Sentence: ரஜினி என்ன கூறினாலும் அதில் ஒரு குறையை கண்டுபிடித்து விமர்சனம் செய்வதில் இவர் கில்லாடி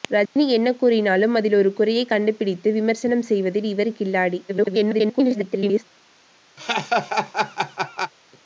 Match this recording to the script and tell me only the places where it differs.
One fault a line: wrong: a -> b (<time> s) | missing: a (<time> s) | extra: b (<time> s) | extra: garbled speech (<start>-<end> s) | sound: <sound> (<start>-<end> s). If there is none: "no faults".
sound: dropout (0.3-0.4 s)
extra: garbled speech (4.5-5.8 s)
sound: laugh (6.6-8.1 s)